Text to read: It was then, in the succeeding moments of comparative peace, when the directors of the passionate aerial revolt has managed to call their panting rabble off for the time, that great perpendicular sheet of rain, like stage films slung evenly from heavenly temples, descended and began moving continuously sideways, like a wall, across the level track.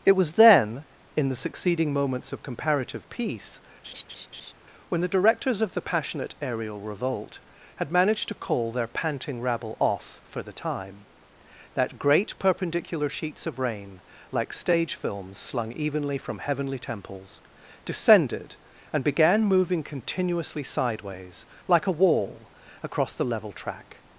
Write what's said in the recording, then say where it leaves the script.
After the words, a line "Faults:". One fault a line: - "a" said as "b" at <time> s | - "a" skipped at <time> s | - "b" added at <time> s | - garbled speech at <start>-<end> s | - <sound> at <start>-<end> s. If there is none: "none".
It was then, in the succeeding moments of comparative peace, when the directors of the passionate aerial revolt had managed to call their panting rabble off for the time, that great perpendicular sheets of rain, like stage films slung evenly from heavenly temples, descended and began moving continuously sideways, like a wall, across the level track.
Faults:
- laugh at 3.8-4.5 s
- "has" said as "had" at 7.8 s
- "sheet" said as "sheets" at 13.1 s